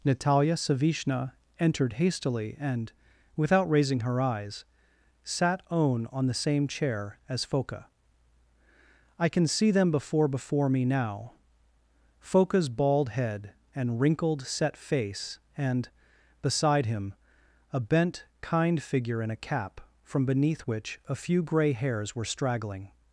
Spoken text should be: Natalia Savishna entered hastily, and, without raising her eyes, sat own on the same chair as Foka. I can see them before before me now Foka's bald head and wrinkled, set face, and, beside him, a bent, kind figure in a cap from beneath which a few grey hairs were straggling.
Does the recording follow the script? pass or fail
pass